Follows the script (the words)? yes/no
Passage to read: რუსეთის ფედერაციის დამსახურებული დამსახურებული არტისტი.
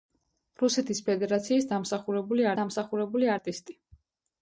yes